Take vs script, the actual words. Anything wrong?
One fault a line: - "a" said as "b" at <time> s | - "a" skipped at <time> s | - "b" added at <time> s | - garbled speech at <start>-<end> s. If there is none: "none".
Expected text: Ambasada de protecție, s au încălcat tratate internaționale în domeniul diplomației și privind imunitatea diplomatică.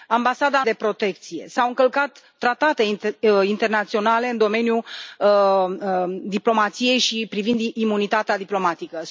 none